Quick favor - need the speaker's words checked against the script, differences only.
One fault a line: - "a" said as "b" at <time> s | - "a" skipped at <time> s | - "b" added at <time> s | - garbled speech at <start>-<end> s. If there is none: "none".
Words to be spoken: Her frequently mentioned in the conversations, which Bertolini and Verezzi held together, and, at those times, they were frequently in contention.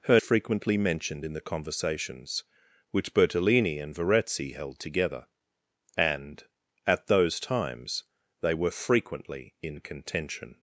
none